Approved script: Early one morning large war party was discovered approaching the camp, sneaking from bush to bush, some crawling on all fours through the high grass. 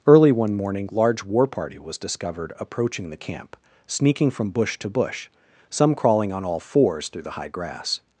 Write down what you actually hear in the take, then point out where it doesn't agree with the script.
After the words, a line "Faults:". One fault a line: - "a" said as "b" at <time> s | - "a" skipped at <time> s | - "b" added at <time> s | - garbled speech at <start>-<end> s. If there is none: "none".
Early one morning large war party was discovered approaching the camp, sneaking from bush to bush, some crawling on all fours through the high grass.
Faults:
none